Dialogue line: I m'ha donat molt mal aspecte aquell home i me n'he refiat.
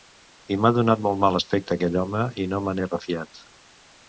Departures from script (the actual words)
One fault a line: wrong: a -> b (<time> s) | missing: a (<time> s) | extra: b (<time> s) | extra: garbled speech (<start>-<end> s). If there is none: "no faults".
extra: no (2.5 s)